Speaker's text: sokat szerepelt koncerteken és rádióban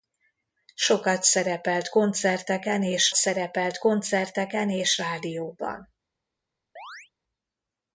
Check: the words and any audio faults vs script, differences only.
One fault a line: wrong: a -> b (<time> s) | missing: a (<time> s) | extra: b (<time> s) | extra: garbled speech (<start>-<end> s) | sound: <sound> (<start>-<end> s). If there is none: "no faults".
extra: szerepelt koncerteken és (3.1 s)
sound: chirp (6.8-7.1 s)